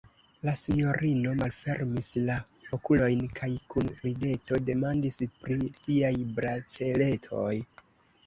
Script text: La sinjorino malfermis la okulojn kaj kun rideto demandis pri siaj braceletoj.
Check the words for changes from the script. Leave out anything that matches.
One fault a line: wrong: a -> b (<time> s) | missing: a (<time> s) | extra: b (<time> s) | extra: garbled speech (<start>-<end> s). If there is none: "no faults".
no faults